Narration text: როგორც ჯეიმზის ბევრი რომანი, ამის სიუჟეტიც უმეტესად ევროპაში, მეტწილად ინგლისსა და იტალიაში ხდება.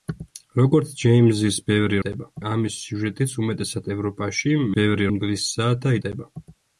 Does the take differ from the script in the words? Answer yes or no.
yes